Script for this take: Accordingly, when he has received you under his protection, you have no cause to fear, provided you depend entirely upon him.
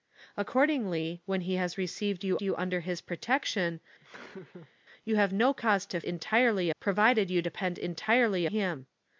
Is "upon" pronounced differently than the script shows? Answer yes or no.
yes